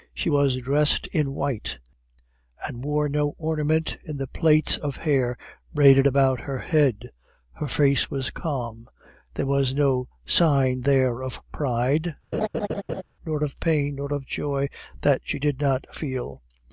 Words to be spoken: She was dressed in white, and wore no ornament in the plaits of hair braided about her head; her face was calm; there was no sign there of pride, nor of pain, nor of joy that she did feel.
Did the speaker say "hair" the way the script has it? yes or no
yes